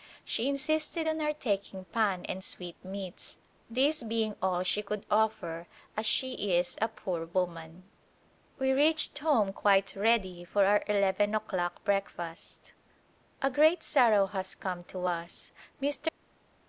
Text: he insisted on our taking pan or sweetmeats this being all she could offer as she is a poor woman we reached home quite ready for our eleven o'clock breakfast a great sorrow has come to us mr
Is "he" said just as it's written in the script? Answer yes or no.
no